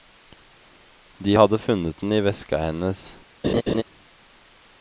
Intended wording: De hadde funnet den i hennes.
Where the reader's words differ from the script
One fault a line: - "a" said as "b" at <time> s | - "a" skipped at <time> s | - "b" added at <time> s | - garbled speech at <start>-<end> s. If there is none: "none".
- "veska" added at 2.2 s